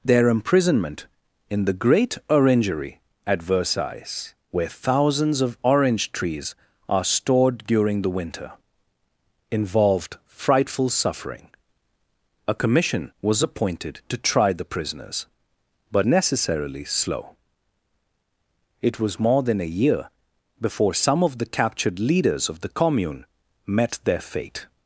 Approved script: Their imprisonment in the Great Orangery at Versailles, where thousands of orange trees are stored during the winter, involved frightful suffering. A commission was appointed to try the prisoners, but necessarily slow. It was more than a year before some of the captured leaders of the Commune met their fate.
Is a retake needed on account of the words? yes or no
no